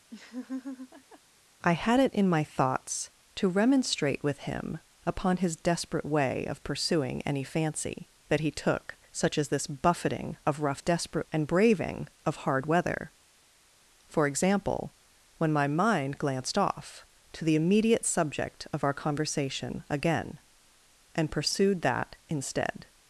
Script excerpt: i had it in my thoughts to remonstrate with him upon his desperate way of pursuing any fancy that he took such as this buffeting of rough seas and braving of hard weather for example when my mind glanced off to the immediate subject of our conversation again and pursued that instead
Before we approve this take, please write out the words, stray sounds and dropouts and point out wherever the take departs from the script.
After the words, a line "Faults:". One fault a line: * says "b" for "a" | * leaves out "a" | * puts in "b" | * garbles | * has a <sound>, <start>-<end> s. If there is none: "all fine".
i had it in my thoughts to remonstrate with him upon his desperate way of pursuing any fancy that he took such as this buffeting of rough desperate and braving of hard weather for example when my mind glanced off to the immediate subject of our conversation again and pursued that instead
Faults:
* has a laugh, 0.1-1.2 s
* says "desperate" for "seas"